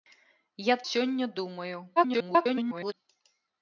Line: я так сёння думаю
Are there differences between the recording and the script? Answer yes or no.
yes